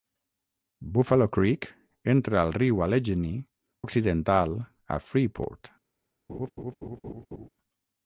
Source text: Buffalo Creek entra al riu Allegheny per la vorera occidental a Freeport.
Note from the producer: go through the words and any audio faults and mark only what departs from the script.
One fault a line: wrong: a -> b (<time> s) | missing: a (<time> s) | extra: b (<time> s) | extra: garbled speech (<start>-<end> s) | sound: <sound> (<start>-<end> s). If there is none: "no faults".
missing: per la vorera (3.4 s)
sound: laugh (6.3-7.5 s)